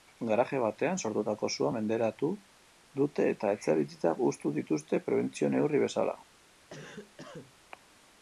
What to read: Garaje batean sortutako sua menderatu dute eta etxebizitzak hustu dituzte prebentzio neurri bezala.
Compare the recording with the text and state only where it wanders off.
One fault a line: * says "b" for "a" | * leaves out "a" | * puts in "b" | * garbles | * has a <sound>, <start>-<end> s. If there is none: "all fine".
* has a cough, 6.7-7.5 s